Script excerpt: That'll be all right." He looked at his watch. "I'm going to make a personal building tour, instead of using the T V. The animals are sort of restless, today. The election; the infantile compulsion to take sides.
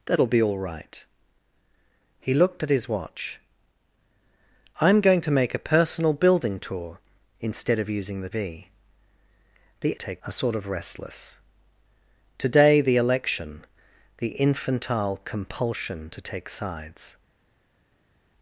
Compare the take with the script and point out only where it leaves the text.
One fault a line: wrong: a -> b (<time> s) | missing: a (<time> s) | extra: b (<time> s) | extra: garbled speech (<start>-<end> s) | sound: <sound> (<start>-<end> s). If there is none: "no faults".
missing: T (8.3 s)
wrong: animals -> take (9.9 s)